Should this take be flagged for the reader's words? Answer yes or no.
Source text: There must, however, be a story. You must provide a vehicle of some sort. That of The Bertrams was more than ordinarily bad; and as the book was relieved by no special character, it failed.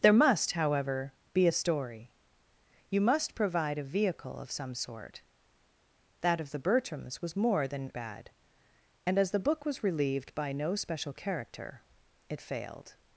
yes